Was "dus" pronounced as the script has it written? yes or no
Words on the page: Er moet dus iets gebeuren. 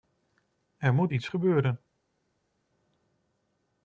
no